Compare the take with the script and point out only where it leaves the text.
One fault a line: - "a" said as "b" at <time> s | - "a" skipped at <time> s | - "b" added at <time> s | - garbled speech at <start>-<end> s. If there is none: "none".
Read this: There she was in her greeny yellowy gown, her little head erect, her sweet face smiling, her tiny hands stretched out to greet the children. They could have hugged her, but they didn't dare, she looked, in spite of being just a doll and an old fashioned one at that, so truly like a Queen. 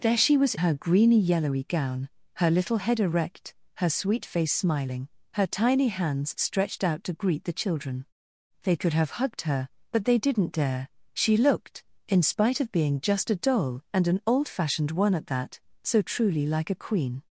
- "in" skipped at 0.6 s